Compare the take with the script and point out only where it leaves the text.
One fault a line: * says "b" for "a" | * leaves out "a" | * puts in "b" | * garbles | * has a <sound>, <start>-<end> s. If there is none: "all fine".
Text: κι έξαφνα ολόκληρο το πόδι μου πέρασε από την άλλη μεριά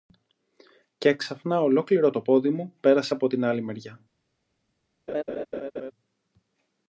* has a laugh, 5.1-5.9 s